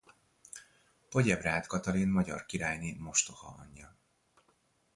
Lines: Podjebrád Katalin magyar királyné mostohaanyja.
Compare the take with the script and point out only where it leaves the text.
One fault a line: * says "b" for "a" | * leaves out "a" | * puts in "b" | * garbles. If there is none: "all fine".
all fine